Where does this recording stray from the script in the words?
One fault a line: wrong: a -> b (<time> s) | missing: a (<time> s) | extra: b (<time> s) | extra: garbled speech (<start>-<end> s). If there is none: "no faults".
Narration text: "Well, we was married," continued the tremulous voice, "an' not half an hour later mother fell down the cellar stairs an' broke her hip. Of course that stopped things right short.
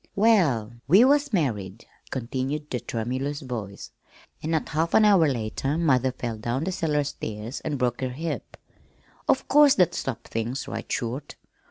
no faults